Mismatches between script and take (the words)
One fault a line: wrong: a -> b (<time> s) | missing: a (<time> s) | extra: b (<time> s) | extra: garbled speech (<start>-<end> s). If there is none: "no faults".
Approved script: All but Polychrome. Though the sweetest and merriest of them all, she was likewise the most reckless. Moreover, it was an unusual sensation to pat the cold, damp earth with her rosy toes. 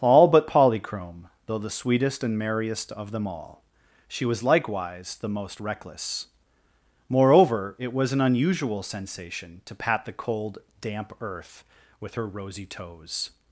no faults